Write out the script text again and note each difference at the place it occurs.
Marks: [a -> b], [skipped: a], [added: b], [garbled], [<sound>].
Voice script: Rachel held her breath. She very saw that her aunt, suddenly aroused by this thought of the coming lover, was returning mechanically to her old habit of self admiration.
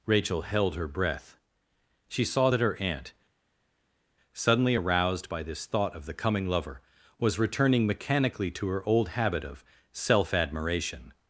Rachel held her breath. She [skipped: very] saw that her aunt, suddenly aroused by this thought of the coming lover, was returning mechanically to her old habit of self admiration.